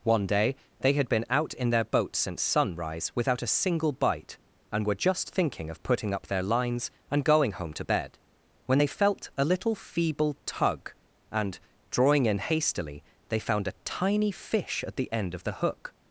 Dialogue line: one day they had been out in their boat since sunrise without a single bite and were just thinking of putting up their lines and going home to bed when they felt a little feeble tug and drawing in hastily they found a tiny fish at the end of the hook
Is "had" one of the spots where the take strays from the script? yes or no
no